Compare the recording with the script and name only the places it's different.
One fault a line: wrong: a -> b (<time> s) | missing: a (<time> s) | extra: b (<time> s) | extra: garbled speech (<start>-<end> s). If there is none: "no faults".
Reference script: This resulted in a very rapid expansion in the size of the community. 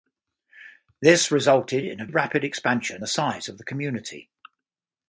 missing: very (2.1 s)
missing: in (3.0 s)